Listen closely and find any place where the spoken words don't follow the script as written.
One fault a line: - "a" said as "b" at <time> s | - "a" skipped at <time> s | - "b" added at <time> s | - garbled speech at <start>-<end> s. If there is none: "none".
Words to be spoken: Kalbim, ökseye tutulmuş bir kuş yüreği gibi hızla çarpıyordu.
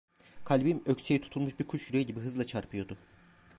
none